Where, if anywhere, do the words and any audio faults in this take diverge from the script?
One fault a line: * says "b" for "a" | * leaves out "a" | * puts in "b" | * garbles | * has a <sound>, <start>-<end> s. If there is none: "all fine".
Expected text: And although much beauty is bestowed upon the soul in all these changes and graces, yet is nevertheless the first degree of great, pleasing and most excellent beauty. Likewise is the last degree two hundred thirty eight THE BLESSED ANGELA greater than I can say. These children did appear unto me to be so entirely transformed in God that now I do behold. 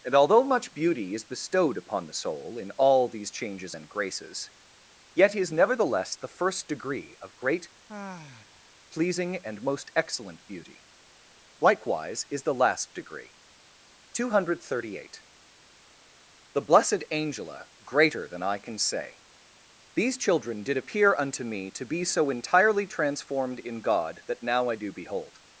* has a sigh, 7.9-8.7 s